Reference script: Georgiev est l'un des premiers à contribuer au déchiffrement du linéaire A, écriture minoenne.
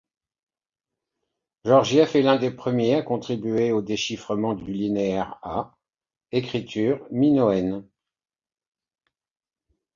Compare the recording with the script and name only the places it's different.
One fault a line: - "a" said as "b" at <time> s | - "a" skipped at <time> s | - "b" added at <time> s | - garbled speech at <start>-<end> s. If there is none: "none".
- "du" added at 4.6 s